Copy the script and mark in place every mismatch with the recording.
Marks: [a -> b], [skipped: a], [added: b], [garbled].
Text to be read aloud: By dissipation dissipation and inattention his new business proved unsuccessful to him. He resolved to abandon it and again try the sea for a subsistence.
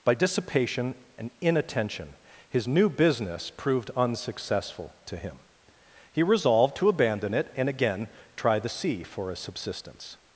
By dissipation [skipped: dissipation] and inattention his new business proved unsuccessful to him. He resolved to abandon it and again try the sea for a subsistence.